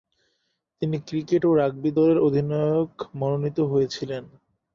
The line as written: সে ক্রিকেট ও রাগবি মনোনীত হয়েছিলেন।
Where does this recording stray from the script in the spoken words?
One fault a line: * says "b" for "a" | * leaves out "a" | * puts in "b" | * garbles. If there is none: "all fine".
* says "তিনি" for "সে"
* puts in "দলের অধিনায়ক"